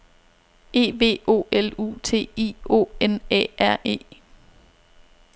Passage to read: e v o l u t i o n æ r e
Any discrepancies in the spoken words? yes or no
no